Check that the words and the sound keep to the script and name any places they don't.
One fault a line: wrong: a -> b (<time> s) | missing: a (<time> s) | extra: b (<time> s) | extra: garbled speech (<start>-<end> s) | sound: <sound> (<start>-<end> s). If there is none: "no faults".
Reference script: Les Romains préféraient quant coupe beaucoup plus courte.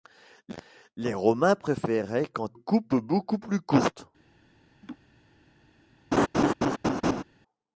sound: laugh (4.8-5.0 s)
sound: laugh (6.1-7.2 s)